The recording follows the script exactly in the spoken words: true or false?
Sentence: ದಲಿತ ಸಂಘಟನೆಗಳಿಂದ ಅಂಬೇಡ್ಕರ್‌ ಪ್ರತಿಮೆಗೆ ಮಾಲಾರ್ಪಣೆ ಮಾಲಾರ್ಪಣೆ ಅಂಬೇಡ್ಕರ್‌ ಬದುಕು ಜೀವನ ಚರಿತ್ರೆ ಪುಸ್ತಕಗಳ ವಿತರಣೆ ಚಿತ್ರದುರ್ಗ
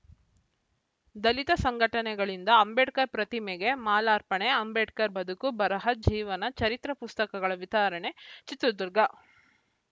false